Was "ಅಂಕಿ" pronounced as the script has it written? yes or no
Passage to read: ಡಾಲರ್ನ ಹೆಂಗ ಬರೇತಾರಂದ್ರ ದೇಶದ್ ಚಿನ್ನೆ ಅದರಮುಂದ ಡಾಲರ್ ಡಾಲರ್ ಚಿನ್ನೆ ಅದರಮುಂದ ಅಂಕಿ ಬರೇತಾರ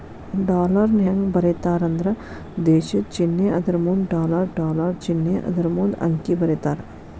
yes